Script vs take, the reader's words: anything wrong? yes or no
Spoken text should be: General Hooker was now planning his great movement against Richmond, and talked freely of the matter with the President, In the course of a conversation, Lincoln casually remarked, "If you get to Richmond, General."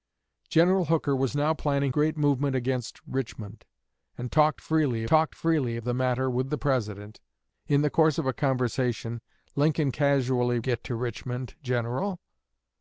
yes